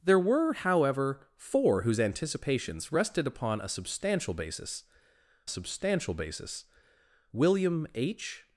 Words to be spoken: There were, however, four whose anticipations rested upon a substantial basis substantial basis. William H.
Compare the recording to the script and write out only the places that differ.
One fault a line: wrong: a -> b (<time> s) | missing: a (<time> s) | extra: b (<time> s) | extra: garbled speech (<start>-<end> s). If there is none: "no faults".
no faults